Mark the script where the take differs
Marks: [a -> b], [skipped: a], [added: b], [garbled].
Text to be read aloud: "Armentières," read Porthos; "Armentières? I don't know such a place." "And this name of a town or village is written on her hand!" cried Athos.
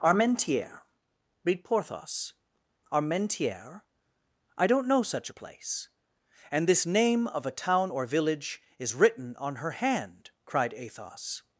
"Armentières," read Porthos; "Armentières? I don't know such a place." "And this name of a town or village is written on her hand!" cried Athos.